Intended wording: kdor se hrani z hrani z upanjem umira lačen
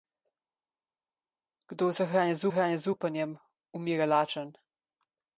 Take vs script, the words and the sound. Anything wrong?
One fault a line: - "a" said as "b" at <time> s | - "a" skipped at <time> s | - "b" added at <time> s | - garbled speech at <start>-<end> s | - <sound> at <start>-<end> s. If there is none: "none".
none